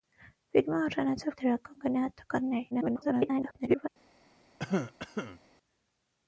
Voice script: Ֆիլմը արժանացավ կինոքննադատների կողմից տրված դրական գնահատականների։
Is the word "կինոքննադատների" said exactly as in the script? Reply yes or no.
no